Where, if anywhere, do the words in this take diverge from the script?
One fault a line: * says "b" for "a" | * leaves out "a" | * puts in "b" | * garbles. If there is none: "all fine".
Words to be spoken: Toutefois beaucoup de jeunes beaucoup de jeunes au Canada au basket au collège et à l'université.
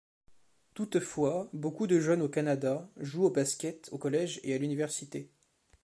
* leaves out "beaucoup de jeunes"
* puts in "jouent"